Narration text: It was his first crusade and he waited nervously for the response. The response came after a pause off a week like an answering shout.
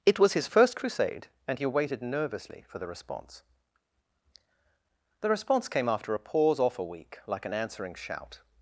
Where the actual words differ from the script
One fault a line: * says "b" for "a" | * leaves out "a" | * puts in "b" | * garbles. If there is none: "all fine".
all fine